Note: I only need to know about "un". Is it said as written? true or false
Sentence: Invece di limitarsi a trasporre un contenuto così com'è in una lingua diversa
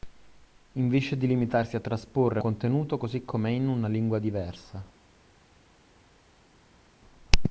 false